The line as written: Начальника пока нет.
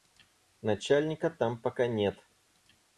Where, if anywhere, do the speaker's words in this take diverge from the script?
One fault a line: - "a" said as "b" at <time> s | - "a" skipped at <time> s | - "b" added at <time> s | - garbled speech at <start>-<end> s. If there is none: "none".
- "там" added at 1.3 s